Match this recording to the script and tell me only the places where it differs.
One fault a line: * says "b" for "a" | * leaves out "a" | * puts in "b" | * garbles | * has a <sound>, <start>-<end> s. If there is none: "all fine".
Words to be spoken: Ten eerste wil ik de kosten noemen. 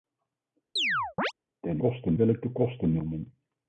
* has a chirp, 0.8-1.3 s
* says "kosten" for "eerste"